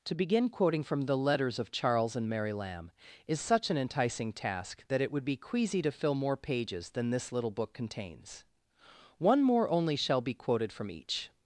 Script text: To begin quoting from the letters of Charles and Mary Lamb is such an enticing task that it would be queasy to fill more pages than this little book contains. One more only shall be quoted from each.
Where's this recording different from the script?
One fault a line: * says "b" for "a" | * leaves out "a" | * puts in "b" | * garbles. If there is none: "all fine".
all fine